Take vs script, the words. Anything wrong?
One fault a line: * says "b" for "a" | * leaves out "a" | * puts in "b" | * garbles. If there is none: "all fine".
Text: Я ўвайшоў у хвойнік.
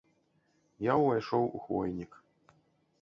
all fine